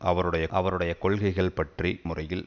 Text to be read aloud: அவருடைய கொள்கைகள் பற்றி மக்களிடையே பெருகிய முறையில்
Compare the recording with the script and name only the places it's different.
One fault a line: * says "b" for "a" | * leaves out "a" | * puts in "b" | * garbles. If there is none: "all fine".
* puts in "அவருடைய"
* leaves out "மக்களிடையே பெருகிய"